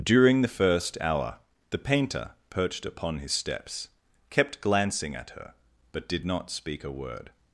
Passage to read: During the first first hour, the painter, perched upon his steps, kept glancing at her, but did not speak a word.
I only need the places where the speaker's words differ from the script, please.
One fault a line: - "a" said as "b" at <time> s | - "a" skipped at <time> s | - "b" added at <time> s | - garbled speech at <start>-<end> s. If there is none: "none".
- "first" skipped at 1.0 s